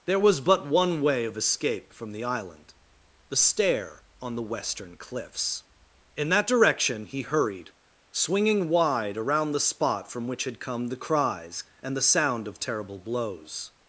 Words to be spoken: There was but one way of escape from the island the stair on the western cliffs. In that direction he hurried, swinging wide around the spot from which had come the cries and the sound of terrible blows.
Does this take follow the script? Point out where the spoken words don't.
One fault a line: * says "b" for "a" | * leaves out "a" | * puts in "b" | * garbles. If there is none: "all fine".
all fine